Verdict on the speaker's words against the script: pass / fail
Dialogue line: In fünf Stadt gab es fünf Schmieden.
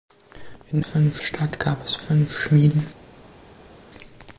pass